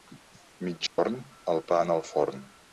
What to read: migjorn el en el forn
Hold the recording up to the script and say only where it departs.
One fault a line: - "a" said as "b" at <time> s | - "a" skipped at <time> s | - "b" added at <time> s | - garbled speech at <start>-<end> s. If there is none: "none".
- "pa" added at 1.7 s